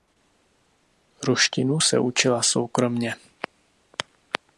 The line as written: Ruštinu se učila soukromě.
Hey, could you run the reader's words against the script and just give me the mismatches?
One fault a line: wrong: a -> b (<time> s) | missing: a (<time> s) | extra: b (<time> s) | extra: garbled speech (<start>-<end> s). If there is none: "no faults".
no faults